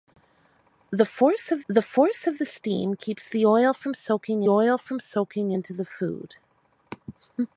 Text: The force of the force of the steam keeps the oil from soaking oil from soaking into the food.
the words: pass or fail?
pass